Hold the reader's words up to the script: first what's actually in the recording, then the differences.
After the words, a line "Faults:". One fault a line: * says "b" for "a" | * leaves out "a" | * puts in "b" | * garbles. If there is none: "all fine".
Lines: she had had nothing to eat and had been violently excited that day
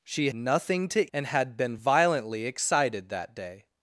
she nothing to and had been violently excited that day
Faults:
* leaves out "had had"
* leaves out "eat"